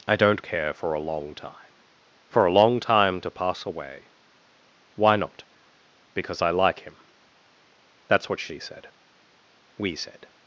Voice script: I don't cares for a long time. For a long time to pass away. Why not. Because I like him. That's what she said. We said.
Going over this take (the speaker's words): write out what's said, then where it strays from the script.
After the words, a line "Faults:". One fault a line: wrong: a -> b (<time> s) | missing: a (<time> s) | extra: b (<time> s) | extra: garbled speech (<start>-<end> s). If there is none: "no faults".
I don't care for a long time. For a long time to pass away. Why not. Because I like him. That's what she said. We said.
Faults:
wrong: cares -> care (0.4 s)